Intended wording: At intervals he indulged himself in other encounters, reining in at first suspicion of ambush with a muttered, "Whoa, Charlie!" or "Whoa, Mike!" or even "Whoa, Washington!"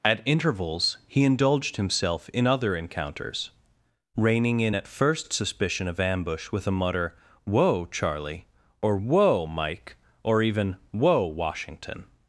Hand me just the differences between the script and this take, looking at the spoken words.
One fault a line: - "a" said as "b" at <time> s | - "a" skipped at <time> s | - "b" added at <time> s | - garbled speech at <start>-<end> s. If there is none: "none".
- "muttered" said as "mutter" at 6.7 s